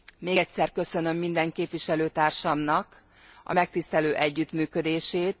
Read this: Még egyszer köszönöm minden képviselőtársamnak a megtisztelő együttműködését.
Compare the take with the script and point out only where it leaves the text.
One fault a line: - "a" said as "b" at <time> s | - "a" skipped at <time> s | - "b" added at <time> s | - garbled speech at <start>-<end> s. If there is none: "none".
none